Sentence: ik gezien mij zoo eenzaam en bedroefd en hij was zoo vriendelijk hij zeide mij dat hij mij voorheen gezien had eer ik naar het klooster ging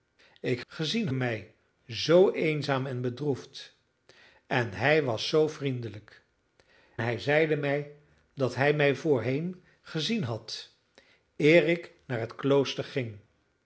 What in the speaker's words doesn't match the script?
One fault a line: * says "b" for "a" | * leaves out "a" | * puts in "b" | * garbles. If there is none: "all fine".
all fine